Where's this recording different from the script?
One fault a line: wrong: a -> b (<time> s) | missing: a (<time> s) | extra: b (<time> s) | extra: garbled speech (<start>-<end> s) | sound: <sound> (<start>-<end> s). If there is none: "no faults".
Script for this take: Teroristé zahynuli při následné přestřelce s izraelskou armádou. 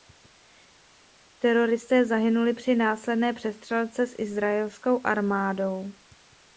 no faults